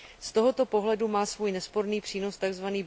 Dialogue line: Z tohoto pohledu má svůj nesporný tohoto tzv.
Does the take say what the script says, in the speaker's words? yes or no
no